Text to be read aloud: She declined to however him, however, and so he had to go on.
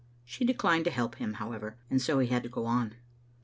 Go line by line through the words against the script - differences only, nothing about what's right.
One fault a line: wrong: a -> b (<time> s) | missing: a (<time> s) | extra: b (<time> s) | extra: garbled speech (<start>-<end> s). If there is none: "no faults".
wrong: however -> help (0.9 s)